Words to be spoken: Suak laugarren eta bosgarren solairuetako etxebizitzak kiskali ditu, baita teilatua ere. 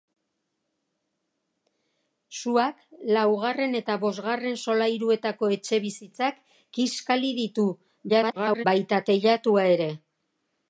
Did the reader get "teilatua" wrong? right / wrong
right